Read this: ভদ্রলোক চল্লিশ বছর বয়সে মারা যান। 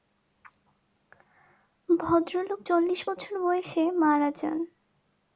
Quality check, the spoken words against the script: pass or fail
pass